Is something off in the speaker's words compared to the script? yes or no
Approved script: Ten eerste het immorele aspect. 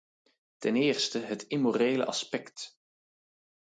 no